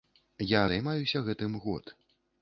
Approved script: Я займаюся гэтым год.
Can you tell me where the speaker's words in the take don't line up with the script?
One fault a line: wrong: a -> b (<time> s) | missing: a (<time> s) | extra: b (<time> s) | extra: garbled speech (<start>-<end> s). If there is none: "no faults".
no faults